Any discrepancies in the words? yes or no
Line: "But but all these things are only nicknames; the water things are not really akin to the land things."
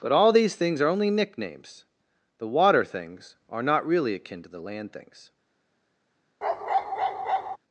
yes